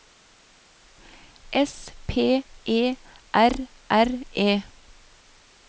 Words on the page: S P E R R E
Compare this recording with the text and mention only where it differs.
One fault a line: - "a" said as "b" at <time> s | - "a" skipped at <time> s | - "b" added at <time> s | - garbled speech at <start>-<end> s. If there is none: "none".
none